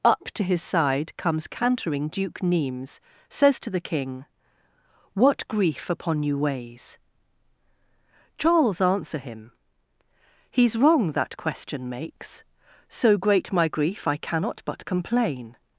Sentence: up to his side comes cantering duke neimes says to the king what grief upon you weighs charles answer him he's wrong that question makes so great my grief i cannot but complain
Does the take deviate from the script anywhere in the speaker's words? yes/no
no